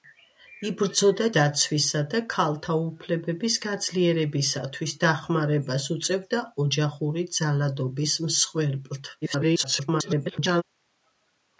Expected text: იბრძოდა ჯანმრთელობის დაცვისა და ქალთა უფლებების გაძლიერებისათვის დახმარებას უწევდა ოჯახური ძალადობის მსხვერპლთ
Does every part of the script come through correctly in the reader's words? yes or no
no